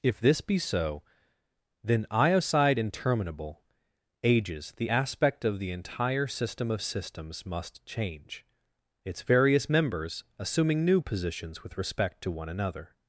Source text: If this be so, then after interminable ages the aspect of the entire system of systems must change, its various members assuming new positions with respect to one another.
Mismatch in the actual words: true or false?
true